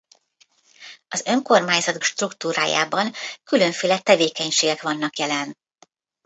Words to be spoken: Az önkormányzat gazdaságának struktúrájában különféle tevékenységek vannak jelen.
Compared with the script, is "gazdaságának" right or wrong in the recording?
wrong